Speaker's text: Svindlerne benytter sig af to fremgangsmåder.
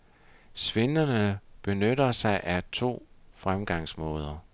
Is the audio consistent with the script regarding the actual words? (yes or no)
yes